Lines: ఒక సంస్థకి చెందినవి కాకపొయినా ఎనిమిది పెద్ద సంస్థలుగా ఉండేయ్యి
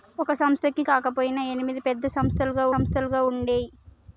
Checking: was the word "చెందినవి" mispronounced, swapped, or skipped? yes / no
yes